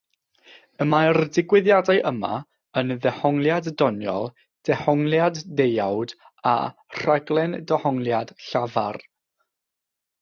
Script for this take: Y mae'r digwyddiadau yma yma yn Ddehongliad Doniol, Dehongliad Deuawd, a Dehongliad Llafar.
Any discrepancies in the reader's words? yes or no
yes